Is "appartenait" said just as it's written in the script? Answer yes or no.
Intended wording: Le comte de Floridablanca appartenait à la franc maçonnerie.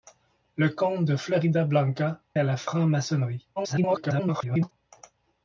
no